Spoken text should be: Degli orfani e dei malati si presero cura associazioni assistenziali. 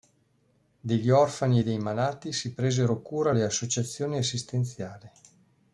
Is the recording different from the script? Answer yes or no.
yes